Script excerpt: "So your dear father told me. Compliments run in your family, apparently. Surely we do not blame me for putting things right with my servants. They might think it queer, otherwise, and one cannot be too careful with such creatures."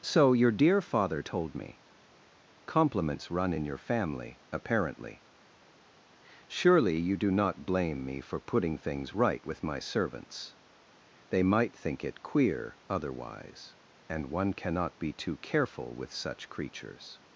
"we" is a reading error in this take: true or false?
true